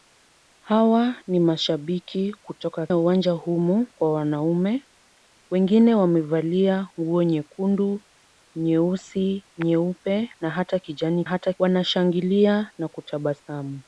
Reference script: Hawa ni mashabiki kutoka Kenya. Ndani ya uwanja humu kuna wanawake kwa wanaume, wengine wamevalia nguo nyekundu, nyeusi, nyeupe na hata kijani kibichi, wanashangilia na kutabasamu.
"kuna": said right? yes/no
no